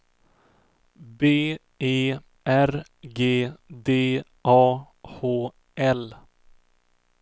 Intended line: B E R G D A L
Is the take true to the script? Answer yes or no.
no